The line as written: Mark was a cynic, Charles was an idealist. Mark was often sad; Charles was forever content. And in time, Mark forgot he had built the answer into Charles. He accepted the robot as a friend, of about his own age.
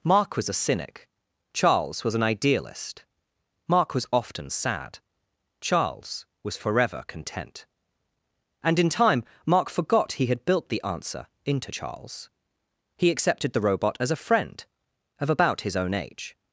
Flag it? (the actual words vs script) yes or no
no